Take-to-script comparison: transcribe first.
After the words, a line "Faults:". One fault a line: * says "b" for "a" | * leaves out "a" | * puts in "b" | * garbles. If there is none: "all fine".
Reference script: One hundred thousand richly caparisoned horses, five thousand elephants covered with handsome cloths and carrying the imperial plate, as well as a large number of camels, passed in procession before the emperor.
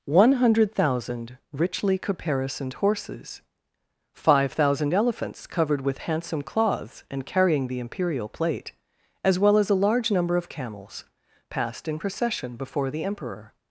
One hundred thousand richly caparisoned horses, five thousand elephants covered with handsome cloths and carrying the imperial plate, as well as a large number of camels, passed in procession before the emperor.
Faults:
all fine